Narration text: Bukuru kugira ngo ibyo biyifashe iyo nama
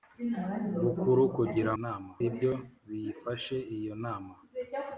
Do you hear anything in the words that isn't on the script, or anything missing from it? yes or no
yes